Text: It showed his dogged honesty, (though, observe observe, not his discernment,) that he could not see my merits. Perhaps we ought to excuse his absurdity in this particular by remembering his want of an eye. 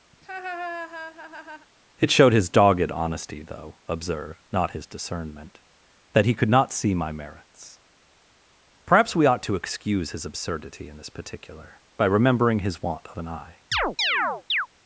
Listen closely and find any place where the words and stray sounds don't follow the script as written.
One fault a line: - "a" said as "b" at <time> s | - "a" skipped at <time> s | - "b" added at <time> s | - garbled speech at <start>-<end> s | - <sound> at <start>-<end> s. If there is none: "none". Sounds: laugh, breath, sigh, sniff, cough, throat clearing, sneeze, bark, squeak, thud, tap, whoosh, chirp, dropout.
- laugh at 0.1-1.7 s
- "observe" skipped at 4.4 s
- chirp at 13.7-14.7 s